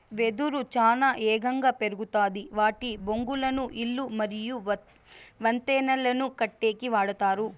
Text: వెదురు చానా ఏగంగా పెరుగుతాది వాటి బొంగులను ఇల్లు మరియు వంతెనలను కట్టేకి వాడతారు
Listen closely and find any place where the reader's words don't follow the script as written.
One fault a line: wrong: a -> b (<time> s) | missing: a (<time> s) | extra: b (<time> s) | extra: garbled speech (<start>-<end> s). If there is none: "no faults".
no faults